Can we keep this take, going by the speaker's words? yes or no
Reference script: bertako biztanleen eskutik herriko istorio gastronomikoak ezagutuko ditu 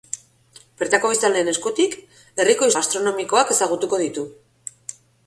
no